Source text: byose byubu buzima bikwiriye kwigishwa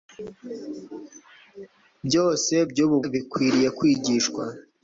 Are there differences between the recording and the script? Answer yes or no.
yes